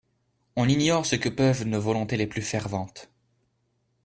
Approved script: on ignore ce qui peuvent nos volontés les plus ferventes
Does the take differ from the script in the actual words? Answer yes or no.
yes